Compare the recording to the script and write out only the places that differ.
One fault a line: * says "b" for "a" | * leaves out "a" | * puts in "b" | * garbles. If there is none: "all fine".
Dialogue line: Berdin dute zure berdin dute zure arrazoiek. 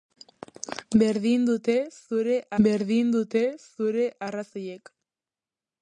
all fine